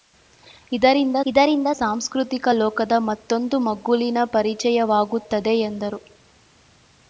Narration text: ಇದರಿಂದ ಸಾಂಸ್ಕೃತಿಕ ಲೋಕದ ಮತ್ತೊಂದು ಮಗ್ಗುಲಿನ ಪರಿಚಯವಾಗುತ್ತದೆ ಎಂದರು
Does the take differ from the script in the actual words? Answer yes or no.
yes